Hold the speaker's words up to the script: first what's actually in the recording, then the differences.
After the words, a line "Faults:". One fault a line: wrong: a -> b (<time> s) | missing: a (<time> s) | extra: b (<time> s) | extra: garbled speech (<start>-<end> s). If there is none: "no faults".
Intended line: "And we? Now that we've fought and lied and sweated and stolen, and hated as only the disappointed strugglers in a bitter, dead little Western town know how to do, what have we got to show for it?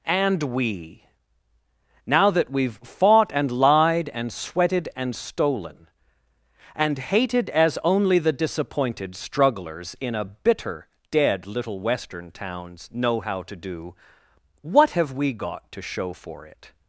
"And we? Now that we've fought and lied and sweated and stolen, and hated as only the disappointed strugglers in a bitter, dead little Western towns know how to do, what have we got to show for it?
Faults:
wrong: town -> towns (12.3 s)